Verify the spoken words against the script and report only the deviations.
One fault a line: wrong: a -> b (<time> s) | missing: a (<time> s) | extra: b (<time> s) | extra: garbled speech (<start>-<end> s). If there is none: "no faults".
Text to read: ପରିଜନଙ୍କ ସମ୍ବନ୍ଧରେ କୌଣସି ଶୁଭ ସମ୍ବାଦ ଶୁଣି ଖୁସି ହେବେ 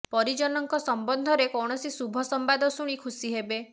no faults